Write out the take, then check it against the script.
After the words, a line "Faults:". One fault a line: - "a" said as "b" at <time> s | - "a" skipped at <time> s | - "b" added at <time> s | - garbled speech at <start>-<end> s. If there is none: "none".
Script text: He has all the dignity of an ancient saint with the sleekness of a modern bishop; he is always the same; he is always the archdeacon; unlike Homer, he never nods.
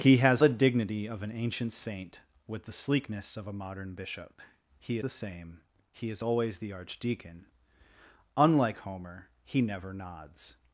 He has the dignity of an ancient saint with the sleekness of a modern bishop; he the same; he is always the archdeacon; unlike Homer, he never nods.
Faults:
- "all" skipped at 0.4 s
- "is always" skipped at 5.0 s